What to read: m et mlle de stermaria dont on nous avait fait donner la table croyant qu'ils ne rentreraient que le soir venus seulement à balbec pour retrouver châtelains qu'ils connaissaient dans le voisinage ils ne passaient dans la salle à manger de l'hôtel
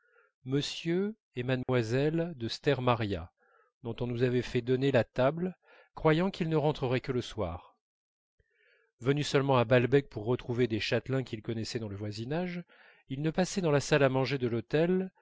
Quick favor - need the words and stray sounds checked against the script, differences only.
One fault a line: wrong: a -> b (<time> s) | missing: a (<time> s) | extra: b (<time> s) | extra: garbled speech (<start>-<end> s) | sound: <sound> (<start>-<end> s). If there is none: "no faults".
sound: dropout (1.6-1.7 s)
extra: des (10.7 s)